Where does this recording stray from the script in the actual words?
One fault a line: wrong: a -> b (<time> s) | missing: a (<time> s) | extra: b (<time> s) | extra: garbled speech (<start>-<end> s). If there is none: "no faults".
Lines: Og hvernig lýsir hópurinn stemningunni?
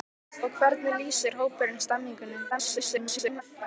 extra: garbled speech (2.5-3.4 s)